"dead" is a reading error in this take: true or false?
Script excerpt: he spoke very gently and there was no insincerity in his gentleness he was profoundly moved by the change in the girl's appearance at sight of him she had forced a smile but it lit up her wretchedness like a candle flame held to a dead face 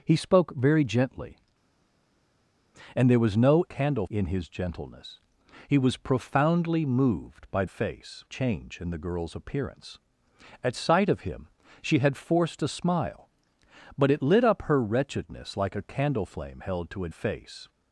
true